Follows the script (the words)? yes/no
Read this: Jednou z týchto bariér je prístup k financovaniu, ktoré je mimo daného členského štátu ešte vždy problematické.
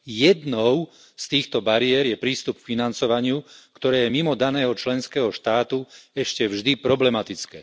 yes